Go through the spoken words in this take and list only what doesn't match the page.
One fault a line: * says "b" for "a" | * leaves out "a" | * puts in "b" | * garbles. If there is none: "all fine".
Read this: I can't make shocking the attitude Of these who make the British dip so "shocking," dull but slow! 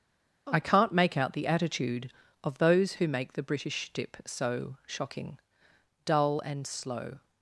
* says "out" for "shocking"
* says "those" for "these"
* says "and" for "but"